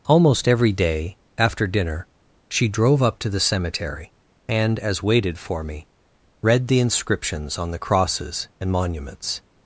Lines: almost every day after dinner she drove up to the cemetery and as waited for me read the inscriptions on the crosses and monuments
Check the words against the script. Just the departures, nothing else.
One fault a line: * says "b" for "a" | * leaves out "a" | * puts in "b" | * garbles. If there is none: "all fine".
all fine